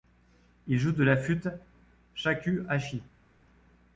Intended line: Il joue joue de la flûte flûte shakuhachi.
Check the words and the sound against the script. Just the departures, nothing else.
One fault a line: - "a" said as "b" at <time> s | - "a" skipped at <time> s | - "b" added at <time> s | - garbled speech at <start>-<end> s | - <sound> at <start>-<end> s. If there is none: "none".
- "joue" skipped at 0.9 s
- "flûte" skipped at 1.5 s